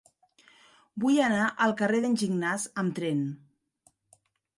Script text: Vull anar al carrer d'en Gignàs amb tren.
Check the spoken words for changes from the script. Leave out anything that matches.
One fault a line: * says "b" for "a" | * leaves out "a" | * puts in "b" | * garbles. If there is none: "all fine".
all fine